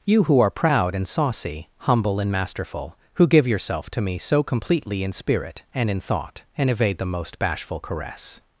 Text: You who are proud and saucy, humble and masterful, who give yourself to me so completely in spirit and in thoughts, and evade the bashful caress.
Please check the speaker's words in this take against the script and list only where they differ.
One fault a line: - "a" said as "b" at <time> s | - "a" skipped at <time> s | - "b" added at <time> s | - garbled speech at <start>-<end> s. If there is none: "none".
- "thoughts" said as "thought" at 6.0 s
- "most" added at 7.0 s